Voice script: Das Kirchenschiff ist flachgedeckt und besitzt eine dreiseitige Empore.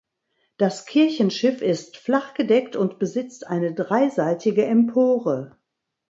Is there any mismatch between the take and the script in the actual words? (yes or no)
no